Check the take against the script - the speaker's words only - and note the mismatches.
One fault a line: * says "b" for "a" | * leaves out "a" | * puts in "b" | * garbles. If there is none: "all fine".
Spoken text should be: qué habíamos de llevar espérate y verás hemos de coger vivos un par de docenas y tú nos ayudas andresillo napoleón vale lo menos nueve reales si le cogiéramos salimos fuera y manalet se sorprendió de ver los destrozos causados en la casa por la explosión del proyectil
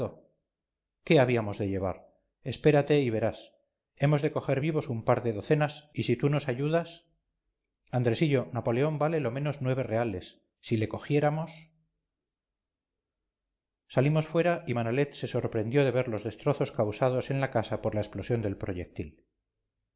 * puts in "si"